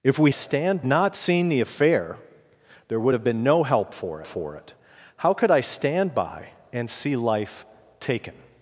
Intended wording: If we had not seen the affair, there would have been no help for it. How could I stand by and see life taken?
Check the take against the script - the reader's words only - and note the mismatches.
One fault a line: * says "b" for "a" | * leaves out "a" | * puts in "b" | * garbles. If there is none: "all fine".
* says "stand" for "had"
* puts in "for"